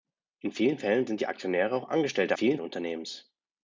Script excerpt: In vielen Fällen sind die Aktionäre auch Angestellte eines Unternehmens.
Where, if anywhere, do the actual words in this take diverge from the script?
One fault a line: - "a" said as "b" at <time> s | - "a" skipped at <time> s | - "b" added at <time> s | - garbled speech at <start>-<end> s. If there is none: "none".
- "eines" said as "vielen" at 2.3 s